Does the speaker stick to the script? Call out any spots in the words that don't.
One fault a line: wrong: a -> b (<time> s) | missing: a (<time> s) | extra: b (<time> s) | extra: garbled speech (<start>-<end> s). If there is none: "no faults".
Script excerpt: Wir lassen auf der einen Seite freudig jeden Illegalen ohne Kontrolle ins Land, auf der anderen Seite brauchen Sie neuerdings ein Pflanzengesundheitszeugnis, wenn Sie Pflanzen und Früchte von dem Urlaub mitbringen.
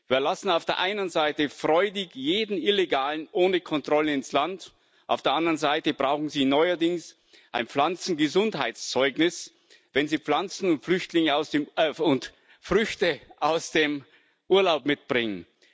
wrong: von -> aus (13.4 s)